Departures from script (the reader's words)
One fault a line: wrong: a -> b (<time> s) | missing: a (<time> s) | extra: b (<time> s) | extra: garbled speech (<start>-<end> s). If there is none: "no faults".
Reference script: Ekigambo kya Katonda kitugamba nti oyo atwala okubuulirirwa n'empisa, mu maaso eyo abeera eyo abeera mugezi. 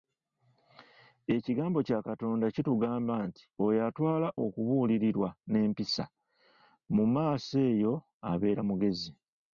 missing: eyo abeera (8.6 s)